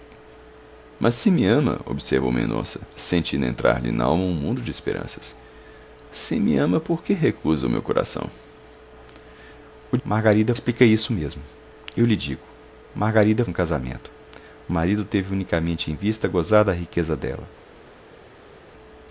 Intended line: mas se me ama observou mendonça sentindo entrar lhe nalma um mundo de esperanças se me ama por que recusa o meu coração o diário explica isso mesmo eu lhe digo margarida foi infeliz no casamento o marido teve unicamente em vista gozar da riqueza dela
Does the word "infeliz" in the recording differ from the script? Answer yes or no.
yes